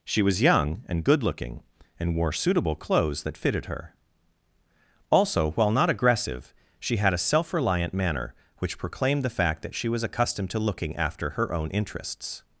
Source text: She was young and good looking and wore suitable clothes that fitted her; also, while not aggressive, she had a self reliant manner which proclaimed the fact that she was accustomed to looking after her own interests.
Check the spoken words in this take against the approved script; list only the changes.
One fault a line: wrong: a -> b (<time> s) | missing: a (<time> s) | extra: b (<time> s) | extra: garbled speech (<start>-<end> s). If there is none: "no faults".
no faults